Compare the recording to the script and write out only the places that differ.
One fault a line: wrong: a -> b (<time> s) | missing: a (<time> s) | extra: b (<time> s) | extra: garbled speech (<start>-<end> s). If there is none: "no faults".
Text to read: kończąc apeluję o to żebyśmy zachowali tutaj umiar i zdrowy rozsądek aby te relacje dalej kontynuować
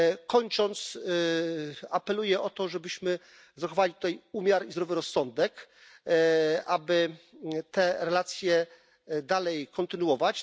no faults